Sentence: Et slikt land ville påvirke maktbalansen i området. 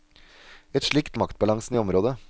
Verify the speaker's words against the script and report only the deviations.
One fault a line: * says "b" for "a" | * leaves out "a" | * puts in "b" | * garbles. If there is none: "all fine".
* leaves out "land ville påvirke"